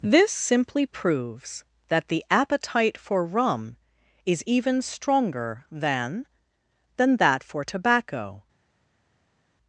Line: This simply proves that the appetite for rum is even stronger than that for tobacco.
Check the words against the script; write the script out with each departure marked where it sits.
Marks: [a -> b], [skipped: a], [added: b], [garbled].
This simply proves that the appetite for rum is even stronger than [added: than] that for tobacco.